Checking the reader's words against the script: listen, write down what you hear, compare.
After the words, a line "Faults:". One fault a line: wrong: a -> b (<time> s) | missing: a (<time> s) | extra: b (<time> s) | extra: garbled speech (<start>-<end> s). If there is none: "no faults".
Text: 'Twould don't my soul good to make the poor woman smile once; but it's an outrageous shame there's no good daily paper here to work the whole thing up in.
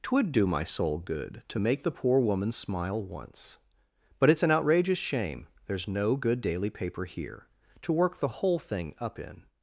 'Twould do my soul good to make the poor woman smile once; but it's an outrageous shame there's no good daily paper here to work the whole thing up in.
Faults:
wrong: don't -> do (0.3 s)